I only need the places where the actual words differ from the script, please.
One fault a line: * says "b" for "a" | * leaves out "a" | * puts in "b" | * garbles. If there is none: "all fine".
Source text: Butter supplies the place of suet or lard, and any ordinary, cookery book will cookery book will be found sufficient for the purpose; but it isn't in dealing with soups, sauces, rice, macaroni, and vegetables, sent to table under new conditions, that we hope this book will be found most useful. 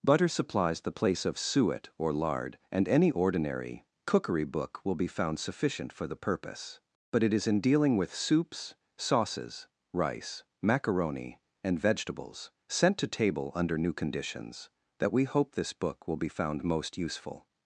* leaves out "cookery book will"
* says "is" for "isn't"